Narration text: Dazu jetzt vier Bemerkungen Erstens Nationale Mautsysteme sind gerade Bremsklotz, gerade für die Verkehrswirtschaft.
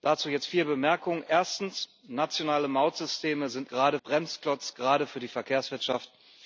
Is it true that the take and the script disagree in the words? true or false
false